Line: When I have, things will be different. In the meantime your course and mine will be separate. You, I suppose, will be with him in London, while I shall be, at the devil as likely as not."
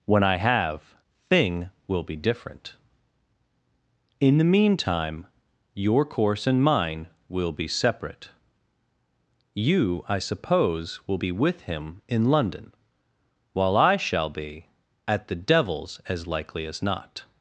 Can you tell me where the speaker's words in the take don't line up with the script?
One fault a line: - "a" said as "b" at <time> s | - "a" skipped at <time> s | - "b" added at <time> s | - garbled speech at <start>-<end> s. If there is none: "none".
- "things" said as "thing" at 1.3 s
- "devil" said as "devils" at 15.3 s